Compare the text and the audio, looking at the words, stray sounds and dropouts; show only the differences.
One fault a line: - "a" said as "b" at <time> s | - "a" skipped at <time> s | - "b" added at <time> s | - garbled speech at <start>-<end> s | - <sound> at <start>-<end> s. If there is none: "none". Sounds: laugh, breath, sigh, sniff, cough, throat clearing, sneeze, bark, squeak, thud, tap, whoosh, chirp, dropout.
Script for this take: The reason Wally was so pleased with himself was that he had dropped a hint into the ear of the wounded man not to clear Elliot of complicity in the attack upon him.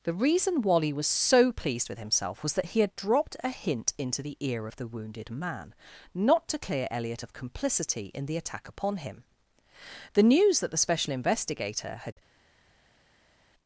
- "The news that the special investigator had" added at 10.1 s